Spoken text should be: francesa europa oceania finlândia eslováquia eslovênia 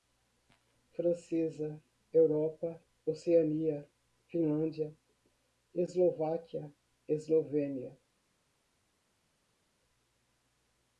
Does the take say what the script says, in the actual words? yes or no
yes